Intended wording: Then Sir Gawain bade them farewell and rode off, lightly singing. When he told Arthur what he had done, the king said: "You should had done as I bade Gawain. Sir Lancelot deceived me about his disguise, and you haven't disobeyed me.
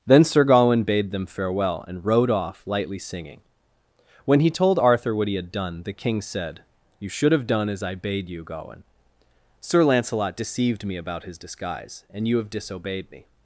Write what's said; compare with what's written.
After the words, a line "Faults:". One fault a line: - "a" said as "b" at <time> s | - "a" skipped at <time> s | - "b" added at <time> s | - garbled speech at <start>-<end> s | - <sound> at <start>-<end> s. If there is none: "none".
Then Sir Gawain bade them farewell and rode off, lightly singing. When he told Arthur what he had done, the king said: "You should have done as I bade you, Gawain. Sir Lancelot deceived me about his disguise, and you have disobeyed me.
Faults:
- "had" said as "have" at 7.3 s
- "you" added at 8.3 s
- "haven't" said as "have" at 12.4 s